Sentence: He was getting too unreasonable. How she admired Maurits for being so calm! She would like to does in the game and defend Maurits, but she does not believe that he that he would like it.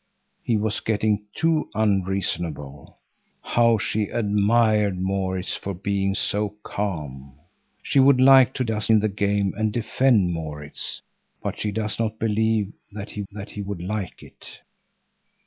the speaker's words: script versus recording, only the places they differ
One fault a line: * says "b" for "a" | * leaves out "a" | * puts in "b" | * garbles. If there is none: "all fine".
all fine